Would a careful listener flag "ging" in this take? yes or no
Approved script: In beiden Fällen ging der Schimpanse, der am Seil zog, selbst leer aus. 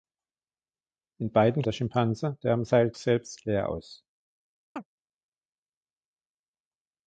yes